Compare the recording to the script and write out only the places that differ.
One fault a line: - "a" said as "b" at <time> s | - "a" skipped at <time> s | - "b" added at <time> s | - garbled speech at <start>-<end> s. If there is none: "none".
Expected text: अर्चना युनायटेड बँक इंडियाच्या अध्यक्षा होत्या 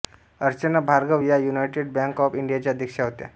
- "भार्गव या" added at 0.8 s
- "ऑफ" added at 2.2 s